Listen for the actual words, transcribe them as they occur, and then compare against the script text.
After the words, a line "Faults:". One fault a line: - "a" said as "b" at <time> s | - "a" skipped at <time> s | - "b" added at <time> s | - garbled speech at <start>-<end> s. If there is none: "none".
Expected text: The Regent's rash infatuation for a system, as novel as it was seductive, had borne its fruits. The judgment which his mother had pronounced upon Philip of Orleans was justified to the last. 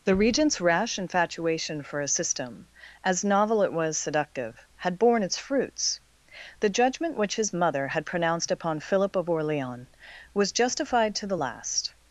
The Regent's rash infatuation for a system, as novel it was seductive, had borne its fruits. The judgment which his mother had pronounced upon Philip of Orleans was justified to the last.
Faults:
- "as" skipped at 3.6 s